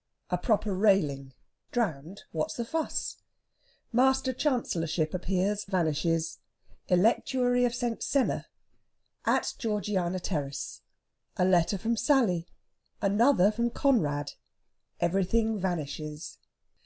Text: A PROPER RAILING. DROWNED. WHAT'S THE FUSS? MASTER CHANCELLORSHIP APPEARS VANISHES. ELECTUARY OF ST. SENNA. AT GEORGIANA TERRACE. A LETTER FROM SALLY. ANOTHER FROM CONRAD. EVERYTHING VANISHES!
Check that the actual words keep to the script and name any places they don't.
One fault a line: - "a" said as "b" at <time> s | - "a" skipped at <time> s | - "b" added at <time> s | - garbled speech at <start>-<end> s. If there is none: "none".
none